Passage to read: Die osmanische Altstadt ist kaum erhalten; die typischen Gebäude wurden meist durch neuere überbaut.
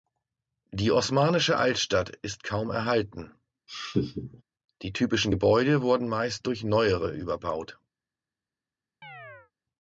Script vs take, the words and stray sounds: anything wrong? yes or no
yes